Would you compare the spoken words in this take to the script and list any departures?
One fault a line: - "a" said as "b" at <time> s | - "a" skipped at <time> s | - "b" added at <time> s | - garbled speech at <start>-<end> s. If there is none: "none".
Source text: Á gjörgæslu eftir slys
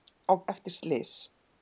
- "gjörgæslu" skipped at 0.3 s